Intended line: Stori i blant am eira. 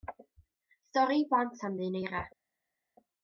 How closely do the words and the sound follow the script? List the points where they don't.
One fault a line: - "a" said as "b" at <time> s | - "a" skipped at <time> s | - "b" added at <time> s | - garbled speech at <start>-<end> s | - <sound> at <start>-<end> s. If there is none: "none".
- "ddyn" added at 1.8 s